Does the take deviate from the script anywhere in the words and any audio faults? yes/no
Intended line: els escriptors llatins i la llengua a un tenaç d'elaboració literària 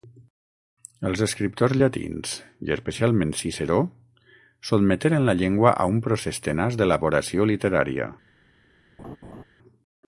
yes